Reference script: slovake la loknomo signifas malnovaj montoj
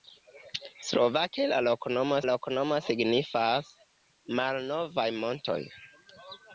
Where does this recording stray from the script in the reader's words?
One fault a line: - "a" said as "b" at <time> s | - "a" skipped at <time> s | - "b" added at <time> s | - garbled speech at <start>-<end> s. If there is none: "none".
- "loknomo" added at 2.3 s